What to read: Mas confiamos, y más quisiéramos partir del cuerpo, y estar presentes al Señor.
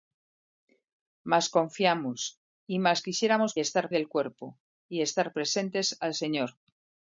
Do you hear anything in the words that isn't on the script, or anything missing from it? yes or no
yes